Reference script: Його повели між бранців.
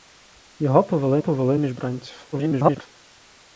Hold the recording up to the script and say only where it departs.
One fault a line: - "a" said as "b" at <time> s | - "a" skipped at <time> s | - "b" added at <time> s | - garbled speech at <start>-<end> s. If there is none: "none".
- "повели" added at 1.2 s
- garbled speech at 2.3-2.9 s